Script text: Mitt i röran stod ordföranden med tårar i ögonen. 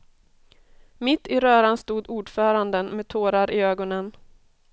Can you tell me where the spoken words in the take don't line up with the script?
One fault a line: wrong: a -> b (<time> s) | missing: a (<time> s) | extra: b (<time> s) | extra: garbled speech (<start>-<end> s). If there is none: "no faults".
no faults